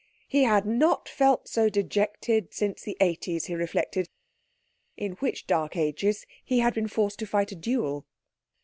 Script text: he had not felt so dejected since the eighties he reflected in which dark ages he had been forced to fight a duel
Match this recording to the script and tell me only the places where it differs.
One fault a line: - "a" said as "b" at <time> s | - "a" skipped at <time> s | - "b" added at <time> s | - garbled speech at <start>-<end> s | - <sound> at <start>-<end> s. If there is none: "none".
none